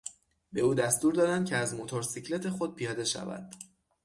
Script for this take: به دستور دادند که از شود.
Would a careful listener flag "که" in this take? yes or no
no